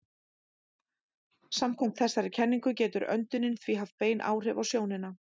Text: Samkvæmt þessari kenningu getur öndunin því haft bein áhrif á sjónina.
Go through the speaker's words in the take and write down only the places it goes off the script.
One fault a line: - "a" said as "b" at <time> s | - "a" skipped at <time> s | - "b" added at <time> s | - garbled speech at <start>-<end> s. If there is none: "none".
none